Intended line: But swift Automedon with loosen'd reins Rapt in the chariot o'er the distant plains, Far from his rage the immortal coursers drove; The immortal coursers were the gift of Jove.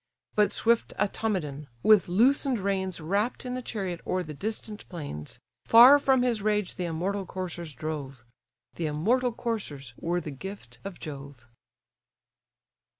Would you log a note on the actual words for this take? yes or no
no